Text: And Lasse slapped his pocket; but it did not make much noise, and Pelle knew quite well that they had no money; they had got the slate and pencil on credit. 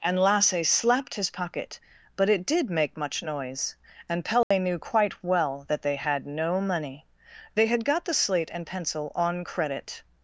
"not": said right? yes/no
no